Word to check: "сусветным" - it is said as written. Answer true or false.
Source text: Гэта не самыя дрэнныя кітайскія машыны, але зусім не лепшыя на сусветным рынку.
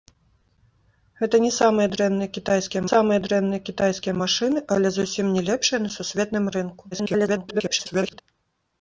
true